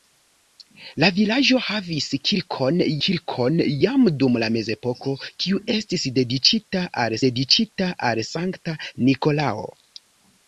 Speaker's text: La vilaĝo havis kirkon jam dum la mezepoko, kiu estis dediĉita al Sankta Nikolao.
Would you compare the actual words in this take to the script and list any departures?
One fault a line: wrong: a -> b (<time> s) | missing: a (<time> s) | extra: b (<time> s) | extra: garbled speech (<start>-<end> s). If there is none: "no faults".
extra: kirkon (3.1 s)
extra: dediĉita al (7.3 s)